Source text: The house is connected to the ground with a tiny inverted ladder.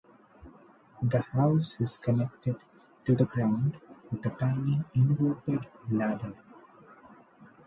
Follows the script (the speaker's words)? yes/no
yes